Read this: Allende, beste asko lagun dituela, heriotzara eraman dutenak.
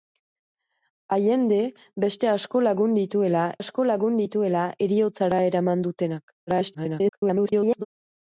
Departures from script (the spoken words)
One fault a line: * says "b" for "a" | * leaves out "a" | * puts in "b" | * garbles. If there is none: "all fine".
* puts in "asko lagun dituela"
* garbles